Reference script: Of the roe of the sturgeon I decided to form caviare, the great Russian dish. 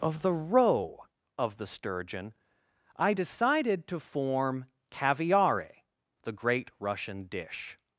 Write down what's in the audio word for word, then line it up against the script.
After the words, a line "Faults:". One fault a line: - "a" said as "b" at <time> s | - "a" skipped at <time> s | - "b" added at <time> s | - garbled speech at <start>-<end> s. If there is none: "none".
Of the roe of the sturgeon I decided to form caviare, the great Russian dish.
Faults:
none